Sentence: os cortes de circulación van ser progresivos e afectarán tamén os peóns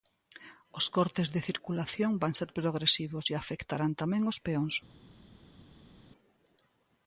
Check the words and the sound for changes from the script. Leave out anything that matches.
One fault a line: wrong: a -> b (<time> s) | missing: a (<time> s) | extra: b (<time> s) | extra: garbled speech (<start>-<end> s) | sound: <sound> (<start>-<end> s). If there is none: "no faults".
no faults